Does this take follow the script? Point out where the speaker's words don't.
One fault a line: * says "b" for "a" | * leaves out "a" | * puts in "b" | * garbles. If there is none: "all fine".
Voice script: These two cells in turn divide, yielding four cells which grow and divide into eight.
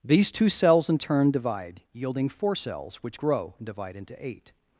all fine